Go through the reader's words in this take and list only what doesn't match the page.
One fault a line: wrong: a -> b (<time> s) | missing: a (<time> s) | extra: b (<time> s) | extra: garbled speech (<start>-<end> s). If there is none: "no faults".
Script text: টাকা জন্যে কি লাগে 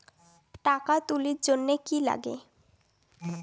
extra: তুলির (1.1 s)